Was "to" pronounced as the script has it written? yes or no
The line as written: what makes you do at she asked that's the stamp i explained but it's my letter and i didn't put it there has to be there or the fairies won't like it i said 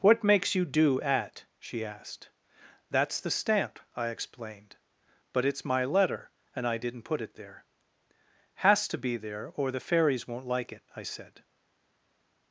yes